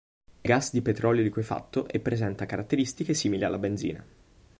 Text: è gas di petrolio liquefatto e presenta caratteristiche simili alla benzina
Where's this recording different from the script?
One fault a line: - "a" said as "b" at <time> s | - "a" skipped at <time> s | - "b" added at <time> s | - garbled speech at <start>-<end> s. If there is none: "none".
none